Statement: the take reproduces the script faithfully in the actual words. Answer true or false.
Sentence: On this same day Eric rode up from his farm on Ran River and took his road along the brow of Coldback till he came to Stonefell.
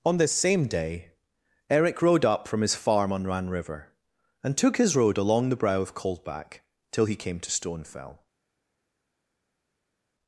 true